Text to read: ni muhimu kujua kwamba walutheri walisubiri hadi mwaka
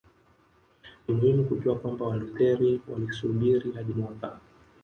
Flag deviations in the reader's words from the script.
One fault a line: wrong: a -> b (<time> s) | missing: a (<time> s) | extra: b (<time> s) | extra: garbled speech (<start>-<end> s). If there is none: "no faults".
no faults